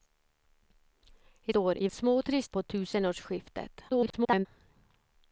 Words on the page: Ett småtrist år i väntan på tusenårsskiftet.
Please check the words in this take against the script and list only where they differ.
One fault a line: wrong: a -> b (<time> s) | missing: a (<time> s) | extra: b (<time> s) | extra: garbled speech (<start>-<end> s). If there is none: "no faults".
missing: småtrist (1.6 s)
wrong: väntan -> småtrist (1.9 s)
extra: garbled speech (3.9-4.5 s)